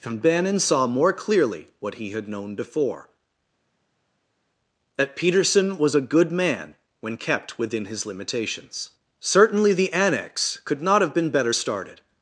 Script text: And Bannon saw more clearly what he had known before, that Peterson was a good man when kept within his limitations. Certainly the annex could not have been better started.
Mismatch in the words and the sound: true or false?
false